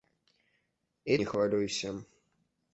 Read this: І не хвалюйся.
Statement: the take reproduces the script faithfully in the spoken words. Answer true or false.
true